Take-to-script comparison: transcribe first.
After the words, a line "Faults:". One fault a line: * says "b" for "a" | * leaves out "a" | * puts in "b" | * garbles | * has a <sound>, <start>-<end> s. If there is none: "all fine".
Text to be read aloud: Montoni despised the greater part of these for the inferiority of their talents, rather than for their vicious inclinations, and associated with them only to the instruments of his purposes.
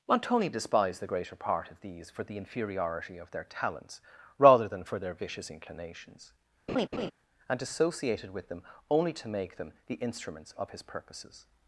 Montoni despised the greater part of these for the inferiority of their talents, rather than for their vicious inclinations, and associated with them only to make them the instruments of his purposes.
Faults:
* has a laugh, 6.7-7.1 s
* puts in "make them"